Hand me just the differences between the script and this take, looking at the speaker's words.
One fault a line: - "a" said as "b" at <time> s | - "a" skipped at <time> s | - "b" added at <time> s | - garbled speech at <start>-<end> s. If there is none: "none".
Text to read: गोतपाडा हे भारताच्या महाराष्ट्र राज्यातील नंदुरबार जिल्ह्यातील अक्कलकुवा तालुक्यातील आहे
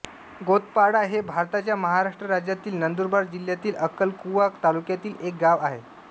- "एक गाव" added at 5.2 s